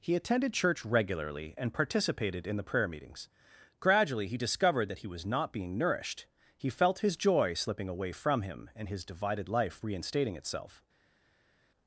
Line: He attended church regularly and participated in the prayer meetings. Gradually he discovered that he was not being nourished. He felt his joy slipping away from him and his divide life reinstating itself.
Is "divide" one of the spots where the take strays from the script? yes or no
yes